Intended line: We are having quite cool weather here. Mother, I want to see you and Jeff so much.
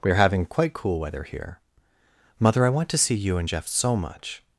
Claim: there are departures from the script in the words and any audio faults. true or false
false